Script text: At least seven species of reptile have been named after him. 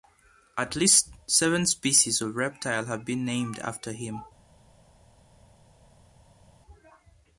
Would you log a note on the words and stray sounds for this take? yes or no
no